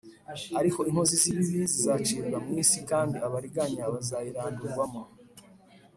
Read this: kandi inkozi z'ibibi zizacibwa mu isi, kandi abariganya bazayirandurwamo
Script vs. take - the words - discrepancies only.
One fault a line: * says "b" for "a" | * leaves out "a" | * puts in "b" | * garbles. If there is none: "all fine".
* says "ariko" for "kandi"